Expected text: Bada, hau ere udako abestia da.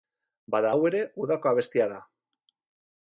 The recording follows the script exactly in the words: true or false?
true